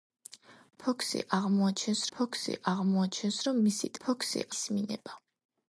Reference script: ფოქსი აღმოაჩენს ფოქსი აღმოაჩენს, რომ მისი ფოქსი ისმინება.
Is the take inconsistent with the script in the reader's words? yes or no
no